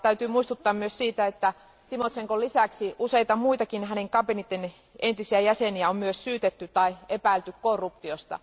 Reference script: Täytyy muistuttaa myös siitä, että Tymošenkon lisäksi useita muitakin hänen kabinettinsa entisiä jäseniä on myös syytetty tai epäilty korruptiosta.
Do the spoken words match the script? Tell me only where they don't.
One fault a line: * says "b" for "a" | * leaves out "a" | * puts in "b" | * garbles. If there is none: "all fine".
all fine